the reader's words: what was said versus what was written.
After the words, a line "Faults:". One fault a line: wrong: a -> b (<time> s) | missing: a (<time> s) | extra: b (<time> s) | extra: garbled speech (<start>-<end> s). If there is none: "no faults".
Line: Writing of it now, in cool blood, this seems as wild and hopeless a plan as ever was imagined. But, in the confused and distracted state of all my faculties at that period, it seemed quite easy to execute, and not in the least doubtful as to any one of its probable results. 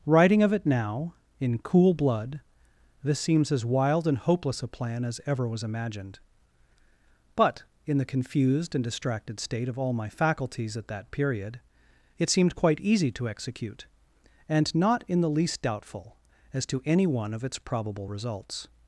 Writing of it now, in cool blood, this seems as wild and hopeless a plan as ever was imagined. But, in the confused and distracted state of all my faculties at that period, it seemed quite easy to execute, and not in the least doubtful as to any one of its probable results.
Faults:
no faults